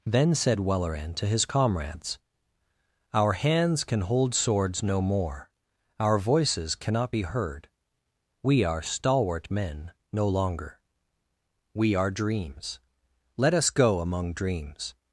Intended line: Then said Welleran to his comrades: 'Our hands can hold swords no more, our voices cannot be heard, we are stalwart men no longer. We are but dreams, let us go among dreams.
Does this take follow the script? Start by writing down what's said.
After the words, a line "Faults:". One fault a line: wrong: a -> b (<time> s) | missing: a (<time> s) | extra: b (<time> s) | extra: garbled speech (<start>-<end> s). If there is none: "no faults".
Then said Welleran to his comrades: 'Our hands can hold swords no more, our voices cannot be heard, we are stalwart men no longer. We are dreams, let us go among dreams.
Faults:
missing: but (12.1 s)